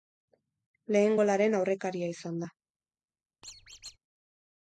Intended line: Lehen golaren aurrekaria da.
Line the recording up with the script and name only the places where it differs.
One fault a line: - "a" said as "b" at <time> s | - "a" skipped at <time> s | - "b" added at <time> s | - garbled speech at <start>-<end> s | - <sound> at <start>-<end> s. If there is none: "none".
- "izan" added at 2.1 s
- squeak at 3.4-4.0 s